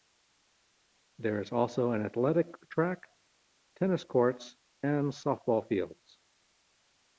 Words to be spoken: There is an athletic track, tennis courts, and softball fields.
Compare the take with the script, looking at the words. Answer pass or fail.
fail